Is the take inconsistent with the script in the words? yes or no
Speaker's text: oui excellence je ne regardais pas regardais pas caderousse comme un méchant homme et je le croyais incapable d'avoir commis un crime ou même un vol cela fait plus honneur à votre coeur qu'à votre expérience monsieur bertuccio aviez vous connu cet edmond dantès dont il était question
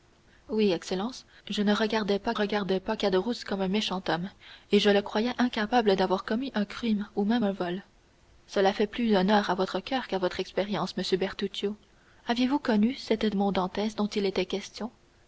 no